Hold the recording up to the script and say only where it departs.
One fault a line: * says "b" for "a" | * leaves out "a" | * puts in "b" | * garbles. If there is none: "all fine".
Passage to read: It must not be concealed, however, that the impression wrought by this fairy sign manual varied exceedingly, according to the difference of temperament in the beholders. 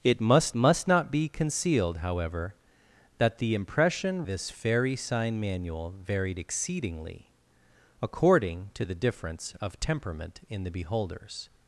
* puts in "must"
* leaves out "wrought by"